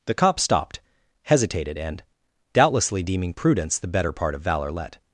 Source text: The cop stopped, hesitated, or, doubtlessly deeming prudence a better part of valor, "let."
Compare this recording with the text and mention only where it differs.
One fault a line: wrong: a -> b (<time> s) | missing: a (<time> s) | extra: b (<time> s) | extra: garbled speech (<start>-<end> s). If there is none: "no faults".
wrong: or -> and (1.8 s)
wrong: a -> the (3.8 s)